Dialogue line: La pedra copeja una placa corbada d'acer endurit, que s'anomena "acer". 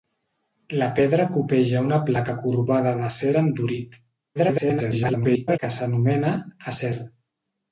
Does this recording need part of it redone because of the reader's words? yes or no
yes